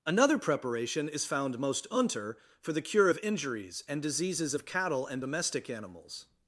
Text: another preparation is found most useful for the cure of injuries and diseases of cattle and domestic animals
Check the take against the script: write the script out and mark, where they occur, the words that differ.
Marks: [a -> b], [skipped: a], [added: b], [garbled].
another preparation is found most [useful -> unter] for the cure of injuries and diseases of cattle and domestic animals